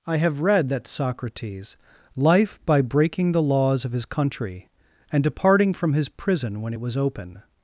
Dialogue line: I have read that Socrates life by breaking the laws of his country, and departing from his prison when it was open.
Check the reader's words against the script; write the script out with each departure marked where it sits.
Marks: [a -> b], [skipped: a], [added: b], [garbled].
I have read that Socrates life by breaking the laws of his country, and departing from his prison when it was open.